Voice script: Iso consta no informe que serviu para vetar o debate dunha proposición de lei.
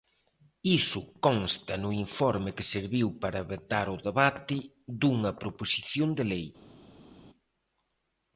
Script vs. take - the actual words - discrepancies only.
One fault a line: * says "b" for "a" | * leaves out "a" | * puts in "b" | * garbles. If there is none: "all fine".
all fine